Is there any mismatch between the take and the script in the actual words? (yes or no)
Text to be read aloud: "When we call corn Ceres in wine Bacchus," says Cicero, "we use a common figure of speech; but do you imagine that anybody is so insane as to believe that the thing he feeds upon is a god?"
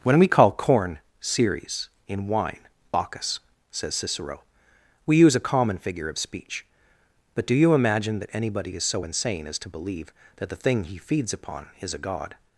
no